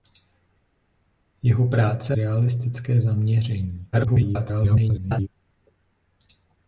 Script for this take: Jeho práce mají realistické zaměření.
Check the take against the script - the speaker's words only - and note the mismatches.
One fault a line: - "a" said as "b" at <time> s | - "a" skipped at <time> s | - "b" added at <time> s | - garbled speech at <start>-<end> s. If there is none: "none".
- "mají" skipped at 2.2 s
- garbled speech at 3.9-5.3 s